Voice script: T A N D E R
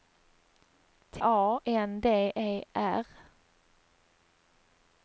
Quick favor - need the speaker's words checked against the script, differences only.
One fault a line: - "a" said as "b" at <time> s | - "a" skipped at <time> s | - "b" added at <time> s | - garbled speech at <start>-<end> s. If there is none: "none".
none